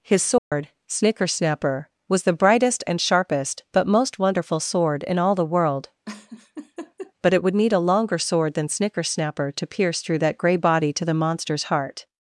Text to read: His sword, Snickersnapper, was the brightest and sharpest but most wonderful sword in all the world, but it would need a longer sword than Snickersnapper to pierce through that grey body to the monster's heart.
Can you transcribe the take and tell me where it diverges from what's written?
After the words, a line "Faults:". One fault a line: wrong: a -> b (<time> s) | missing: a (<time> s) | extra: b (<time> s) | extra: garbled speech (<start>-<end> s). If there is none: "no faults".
His sword, Snickersnapper, was the brightest and sharpest but most wonderful sword in all the world, but it would need a longer sword than Snickersnapper to pierce through that grey body to the monster's heart.
Faults:
no faults